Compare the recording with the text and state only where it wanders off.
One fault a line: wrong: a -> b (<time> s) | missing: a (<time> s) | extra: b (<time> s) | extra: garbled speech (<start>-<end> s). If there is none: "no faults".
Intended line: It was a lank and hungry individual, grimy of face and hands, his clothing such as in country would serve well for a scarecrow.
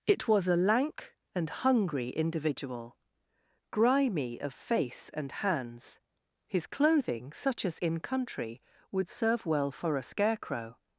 no faults